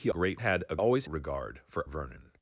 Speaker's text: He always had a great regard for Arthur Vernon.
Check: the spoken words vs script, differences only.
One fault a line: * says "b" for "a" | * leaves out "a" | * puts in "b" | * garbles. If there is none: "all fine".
* says "great" for "always"
* says "always" for "great"
* leaves out "Arthur"